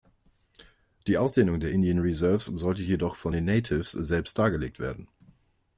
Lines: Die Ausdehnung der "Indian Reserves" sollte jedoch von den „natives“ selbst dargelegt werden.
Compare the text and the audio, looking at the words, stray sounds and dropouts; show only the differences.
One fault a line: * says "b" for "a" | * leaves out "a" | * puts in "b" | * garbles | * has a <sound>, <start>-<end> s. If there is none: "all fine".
all fine